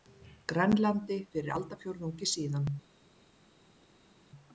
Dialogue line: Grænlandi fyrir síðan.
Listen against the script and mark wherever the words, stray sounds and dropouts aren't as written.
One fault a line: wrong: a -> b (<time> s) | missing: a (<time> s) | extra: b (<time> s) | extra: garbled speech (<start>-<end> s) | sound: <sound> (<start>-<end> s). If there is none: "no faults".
extra: aldarfjórðungi (1.6 s)